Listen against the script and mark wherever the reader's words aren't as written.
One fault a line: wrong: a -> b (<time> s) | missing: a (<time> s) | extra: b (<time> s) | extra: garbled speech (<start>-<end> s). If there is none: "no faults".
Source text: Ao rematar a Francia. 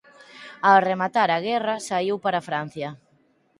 extra: guerra saíu para (1.5 s)